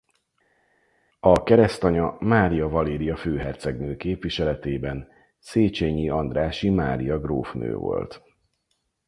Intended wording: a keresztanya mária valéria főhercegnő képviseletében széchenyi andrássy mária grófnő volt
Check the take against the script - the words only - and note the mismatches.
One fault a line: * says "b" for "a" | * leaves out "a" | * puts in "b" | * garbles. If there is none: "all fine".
all fine